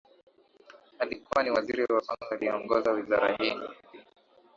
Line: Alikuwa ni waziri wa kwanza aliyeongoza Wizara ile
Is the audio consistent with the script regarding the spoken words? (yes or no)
no